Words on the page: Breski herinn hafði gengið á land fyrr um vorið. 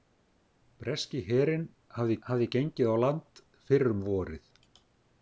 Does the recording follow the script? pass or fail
fail